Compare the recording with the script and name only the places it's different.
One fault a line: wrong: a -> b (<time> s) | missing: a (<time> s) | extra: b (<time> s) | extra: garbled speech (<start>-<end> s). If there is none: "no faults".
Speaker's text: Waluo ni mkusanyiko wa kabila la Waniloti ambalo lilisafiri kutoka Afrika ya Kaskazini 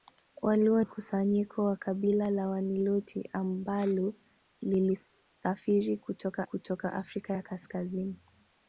missing: ni (0.8 s)
extra: kutoka (6.4 s)